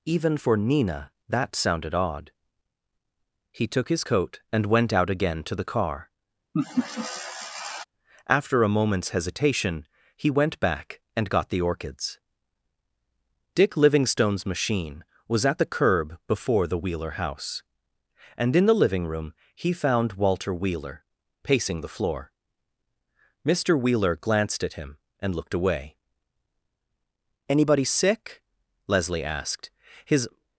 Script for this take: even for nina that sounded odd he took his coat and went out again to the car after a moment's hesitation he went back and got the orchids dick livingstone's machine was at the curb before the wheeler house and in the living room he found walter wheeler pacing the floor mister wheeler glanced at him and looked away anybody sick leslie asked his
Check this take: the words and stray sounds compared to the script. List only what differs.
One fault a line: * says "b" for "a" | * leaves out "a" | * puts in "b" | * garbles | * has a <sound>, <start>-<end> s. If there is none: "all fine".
* has a laugh, 6.5-7.8 s